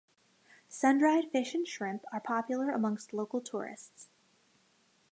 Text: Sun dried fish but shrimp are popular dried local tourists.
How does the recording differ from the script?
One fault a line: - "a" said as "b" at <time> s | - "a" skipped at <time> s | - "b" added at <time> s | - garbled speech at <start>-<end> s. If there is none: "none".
- "but" said as "and" at 1.5 s
- "dried" said as "amongst" at 2.7 s